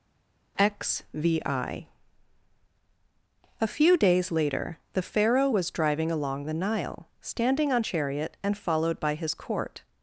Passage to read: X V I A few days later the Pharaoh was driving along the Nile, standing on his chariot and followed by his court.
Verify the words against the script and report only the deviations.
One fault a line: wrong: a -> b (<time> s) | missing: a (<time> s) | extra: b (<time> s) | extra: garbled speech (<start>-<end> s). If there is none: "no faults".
missing: his (7.8 s)